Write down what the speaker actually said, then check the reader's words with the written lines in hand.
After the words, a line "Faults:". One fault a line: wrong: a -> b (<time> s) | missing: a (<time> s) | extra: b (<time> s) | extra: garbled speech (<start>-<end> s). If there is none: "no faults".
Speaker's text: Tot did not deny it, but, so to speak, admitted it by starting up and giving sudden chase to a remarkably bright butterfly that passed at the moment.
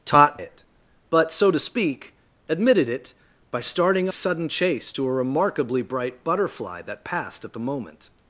Tot it, but, so to speak, admitted it by starting sudden chase to a remarkably bright butterfly that passed at the moment.
Faults:
missing: did not deny (0.4 s)
missing: up and giving (4.1 s)